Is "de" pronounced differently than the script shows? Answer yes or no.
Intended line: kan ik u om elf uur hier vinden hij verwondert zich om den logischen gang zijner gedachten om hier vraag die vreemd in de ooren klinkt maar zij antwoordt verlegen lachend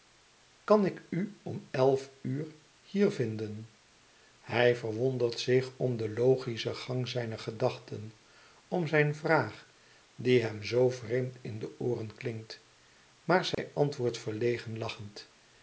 no